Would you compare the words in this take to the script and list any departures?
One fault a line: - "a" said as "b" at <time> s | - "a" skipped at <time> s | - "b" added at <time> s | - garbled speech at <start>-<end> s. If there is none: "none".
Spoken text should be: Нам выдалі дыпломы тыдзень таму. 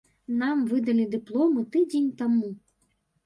none